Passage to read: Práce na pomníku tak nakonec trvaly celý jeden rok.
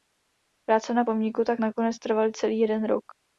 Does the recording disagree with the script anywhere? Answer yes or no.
no